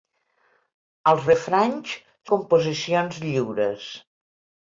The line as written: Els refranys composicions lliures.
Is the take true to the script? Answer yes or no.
yes